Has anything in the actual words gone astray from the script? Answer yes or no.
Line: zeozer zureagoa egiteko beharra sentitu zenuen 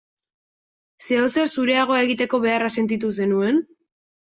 no